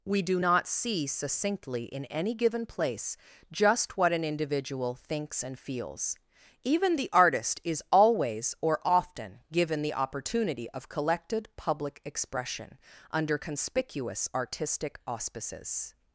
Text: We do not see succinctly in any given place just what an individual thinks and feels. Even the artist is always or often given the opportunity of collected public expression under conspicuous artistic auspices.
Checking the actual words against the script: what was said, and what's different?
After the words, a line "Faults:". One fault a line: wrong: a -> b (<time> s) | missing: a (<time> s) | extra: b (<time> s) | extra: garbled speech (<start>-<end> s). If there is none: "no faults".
We do not see succinctly in any given place just what an individual thinks and feels. Even the artist is always or often given the opportunity of collected public expression under conspicuous artistic auspices.
Faults:
no faults